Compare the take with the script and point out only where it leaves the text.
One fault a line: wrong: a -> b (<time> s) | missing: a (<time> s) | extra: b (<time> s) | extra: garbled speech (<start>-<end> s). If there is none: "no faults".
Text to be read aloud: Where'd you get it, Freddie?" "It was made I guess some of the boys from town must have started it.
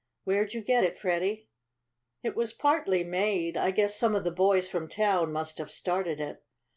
extra: partly (2.5 s)